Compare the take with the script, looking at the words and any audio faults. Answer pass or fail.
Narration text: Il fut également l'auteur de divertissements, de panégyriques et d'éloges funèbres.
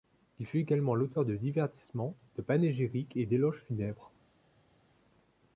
pass